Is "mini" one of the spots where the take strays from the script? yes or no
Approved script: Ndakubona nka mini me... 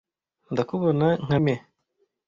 yes